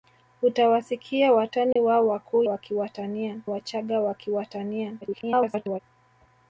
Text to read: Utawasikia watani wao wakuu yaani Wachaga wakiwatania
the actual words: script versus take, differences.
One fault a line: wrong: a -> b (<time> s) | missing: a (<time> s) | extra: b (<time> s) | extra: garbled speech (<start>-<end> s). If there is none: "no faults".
wrong: yaani -> wakiwatania (2.4 s)
extra: garbled speech (5.0-5.8 s)